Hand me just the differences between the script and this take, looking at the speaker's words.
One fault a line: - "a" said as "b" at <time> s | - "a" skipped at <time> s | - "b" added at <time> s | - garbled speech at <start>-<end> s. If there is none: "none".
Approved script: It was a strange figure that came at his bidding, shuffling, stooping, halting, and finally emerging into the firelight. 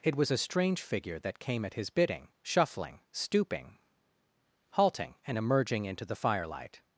- "finally" skipped at 5.4 s